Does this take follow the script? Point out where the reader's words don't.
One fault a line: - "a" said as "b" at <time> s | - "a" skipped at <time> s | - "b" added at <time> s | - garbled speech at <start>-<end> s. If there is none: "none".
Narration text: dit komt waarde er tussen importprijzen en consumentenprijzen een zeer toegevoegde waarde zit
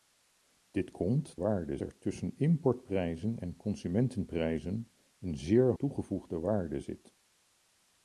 none